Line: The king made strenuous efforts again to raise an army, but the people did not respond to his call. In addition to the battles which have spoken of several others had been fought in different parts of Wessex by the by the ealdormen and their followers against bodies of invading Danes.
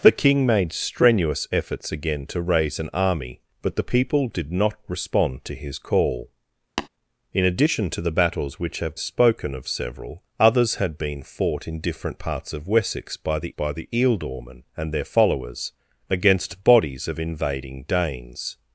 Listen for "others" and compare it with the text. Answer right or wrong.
right